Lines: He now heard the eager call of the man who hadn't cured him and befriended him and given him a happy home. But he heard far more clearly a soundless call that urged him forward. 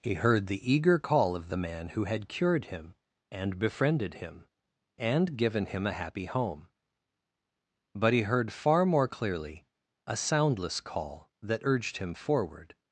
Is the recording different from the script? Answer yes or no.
yes